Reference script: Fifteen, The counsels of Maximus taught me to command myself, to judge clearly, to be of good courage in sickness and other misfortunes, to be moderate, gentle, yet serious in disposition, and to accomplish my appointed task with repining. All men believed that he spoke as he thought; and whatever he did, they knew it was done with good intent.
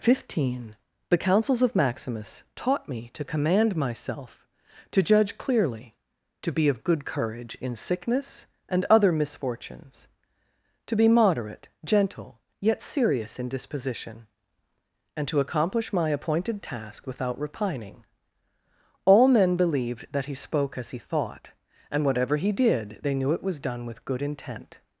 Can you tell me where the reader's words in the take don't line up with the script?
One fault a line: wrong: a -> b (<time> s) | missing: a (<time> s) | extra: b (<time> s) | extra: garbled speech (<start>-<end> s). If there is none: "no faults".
wrong: with -> without (17.1 s)